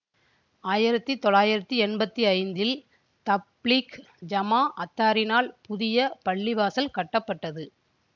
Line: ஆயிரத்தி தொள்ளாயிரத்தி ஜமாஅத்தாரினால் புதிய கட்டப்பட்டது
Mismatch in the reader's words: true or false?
true